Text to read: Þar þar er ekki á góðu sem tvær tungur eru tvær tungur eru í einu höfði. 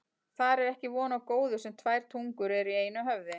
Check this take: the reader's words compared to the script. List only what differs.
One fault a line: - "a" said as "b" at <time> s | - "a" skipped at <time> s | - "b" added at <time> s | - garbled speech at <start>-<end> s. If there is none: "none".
- "þar" skipped at 0.6 s
- "von" added at 0.9 s
- "tvær tungur eru" skipped at 2.7 s